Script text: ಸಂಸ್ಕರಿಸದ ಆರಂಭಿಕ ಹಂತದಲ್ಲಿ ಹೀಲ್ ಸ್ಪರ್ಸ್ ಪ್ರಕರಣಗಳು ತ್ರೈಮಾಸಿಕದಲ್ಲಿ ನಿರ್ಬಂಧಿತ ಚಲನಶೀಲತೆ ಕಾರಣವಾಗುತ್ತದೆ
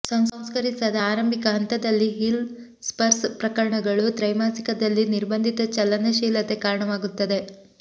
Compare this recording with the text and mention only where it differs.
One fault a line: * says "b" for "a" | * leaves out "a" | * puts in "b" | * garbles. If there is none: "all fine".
all fine